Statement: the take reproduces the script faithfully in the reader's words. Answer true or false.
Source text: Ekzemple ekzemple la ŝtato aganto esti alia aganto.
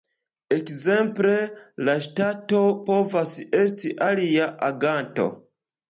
false